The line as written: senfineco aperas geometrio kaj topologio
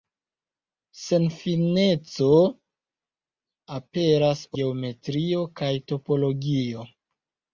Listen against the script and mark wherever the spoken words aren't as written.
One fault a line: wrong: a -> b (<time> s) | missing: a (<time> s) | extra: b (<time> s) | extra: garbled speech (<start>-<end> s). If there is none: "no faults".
no faults